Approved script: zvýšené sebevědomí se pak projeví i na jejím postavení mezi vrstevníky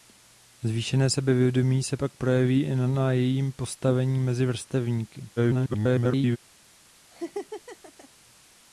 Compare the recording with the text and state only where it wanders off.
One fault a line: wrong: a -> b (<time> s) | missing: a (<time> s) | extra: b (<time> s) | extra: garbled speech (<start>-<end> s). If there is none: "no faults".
extra: garbled speech (5.4-6.4 s)